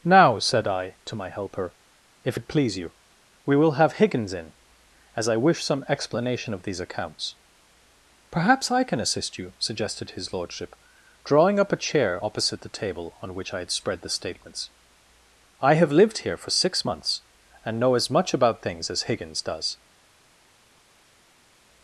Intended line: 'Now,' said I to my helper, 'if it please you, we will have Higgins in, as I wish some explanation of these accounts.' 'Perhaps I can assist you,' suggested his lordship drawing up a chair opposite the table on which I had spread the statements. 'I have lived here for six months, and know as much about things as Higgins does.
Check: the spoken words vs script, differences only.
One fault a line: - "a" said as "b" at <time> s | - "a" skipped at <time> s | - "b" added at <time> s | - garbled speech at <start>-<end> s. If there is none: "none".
none